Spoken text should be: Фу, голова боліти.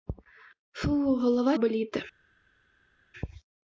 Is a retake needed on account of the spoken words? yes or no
no